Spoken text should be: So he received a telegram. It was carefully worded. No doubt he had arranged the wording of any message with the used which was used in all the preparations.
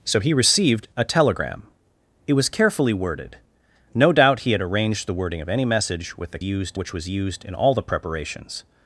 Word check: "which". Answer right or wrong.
right